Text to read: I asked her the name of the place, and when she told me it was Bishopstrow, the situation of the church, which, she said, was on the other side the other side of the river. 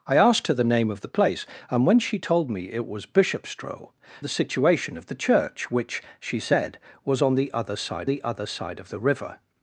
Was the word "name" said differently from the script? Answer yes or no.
no